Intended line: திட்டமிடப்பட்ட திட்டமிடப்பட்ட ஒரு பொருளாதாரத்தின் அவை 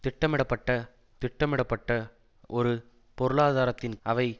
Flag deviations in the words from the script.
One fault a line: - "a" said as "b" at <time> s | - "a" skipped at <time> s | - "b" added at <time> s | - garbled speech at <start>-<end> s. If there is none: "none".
none